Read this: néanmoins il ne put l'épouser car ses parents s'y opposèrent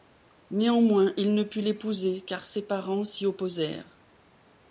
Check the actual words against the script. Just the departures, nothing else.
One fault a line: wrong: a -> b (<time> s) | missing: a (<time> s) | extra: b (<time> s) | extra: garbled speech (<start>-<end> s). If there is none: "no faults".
no faults